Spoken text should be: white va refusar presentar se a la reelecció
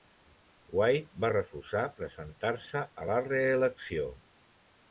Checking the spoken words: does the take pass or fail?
pass